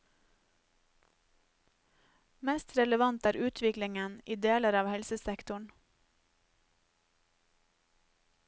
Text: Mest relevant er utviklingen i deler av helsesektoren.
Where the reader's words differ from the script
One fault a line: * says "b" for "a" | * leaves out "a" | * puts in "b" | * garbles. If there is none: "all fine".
all fine